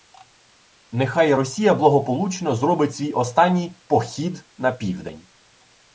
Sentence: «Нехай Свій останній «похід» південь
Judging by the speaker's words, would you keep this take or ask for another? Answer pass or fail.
fail